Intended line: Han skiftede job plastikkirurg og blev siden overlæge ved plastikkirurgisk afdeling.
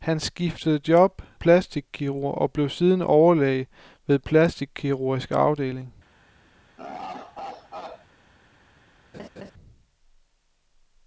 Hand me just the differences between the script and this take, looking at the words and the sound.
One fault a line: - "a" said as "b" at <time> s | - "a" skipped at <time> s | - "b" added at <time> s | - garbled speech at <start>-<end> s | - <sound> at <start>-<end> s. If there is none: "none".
- laugh at 6.8-8.1 s
- laugh at 9.1-9.5 s